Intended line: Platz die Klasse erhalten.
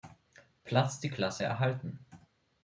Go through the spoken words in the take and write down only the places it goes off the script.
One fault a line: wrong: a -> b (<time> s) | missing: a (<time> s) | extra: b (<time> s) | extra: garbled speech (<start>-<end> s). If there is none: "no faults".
no faults